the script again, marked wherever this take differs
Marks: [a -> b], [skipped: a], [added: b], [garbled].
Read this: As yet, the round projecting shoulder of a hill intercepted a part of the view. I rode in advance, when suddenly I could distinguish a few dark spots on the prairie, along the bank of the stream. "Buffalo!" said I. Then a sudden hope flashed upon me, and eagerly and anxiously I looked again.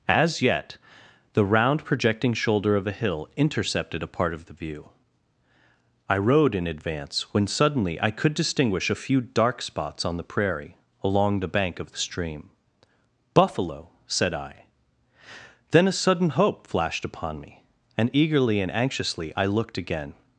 As yet, the round projecting shoulder of a hill intercepted a part of the view. I rode in advance, when suddenly I could distinguish a few dark spots on the prairie, along the bank of the stream. "Buffalo!" said I. Then a sudden hope flashed upon me, and eagerly and anxiously I looked again.